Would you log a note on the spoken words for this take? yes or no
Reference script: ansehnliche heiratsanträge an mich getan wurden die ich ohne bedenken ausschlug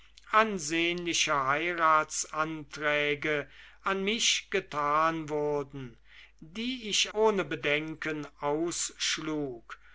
no